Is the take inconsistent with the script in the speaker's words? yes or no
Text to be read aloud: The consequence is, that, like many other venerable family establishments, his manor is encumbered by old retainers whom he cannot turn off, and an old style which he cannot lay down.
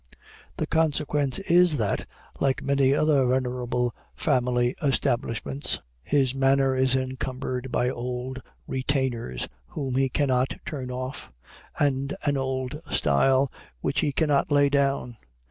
no